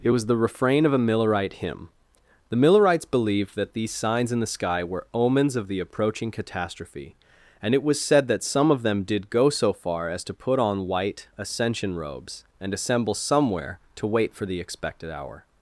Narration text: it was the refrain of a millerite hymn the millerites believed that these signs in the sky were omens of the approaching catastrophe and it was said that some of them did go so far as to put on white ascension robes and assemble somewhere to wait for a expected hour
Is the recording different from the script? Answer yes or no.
yes